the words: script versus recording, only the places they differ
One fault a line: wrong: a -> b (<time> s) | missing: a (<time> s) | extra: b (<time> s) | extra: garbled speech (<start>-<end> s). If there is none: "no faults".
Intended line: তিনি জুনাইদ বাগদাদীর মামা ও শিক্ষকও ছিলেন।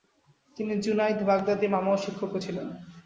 no faults